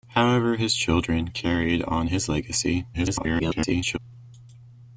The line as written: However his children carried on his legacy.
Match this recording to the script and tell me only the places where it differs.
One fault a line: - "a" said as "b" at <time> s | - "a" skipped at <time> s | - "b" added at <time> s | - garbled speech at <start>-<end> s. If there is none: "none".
- garbled speech at 2.9-4.0 s